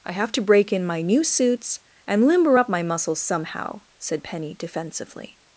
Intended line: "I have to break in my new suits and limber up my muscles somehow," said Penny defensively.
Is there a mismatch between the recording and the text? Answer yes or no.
no